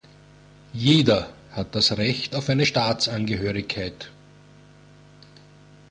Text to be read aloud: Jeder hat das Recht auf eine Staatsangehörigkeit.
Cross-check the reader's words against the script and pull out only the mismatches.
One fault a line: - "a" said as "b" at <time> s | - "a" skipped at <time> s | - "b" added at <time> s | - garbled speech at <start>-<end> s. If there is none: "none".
none